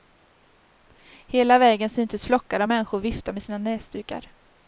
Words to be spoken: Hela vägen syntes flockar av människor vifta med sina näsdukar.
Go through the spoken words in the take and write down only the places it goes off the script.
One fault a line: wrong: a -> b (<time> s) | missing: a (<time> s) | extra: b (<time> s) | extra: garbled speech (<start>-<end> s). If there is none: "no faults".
no faults